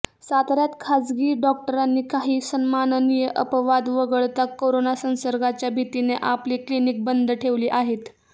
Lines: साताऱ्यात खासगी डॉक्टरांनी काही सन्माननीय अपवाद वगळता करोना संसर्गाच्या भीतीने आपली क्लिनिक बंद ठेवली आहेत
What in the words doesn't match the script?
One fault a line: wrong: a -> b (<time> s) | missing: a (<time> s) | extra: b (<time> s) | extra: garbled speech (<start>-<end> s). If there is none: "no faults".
no faults